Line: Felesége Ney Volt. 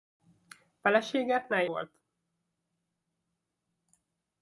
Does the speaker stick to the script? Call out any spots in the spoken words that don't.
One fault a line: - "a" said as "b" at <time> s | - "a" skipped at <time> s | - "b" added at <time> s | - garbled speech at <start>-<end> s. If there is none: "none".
none